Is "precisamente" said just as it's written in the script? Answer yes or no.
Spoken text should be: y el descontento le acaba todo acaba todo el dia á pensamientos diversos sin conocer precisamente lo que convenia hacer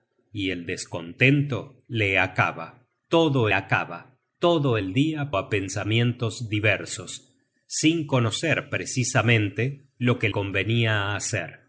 yes